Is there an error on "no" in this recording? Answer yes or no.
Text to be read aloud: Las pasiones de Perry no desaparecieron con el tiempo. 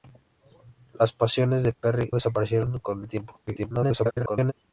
yes